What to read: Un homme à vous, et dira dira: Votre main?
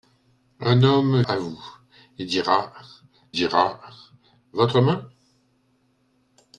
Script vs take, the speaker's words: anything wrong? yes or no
no